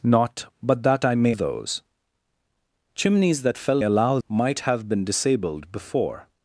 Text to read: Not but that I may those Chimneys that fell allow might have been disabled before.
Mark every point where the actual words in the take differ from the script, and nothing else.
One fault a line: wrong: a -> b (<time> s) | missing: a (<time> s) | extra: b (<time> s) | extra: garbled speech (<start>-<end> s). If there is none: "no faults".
no faults